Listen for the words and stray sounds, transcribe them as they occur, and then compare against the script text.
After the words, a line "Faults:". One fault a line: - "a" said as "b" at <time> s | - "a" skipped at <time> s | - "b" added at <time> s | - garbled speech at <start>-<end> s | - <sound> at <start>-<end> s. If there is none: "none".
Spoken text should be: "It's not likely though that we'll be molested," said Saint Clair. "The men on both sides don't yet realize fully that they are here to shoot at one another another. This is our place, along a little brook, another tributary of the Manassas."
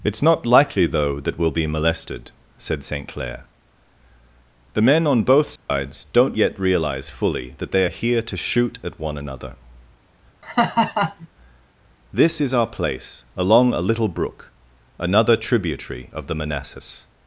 "It's not likely though that we'll be molested," said Saint Clair. "The men on both sides don't yet realize fully that they are here to shoot at one another. This is our place, along a little brook, another tributary of the Manassas."
Faults:
- dropout at 5.6-5.7 s
- "another" skipped at 9.6 s
- laugh at 10.4-11.3 s